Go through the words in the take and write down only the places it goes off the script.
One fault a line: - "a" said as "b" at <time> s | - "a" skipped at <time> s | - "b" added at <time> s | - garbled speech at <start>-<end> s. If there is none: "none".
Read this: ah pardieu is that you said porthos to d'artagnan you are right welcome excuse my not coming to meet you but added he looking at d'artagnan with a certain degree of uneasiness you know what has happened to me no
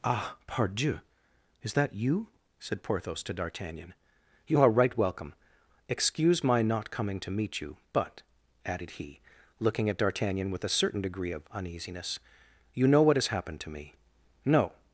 none